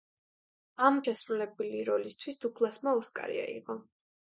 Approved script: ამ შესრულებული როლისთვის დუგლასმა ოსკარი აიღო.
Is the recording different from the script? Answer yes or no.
no